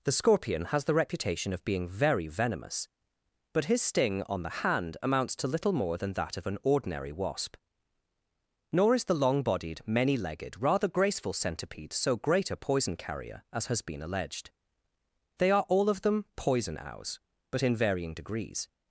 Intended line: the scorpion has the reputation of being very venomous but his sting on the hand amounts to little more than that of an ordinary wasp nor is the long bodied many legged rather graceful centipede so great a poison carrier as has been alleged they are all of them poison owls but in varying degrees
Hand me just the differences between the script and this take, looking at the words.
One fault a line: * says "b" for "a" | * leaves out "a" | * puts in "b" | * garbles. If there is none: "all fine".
all fine